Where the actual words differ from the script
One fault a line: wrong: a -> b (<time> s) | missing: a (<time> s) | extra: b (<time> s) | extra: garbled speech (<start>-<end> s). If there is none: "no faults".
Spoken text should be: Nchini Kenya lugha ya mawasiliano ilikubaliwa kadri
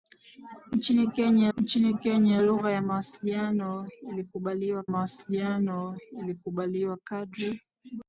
extra: nchini Kenya (1.6 s)
extra: mawasiliano ilikubaliwa (4.8 s)